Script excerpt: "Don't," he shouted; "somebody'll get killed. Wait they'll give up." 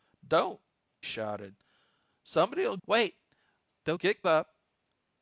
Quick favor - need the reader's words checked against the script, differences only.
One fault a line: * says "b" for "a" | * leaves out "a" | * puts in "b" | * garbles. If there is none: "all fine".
* leaves out "he"
* leaves out "get killed"
* says "get" for "give"